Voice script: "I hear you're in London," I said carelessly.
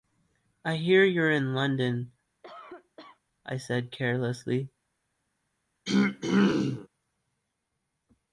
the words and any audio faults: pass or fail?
fail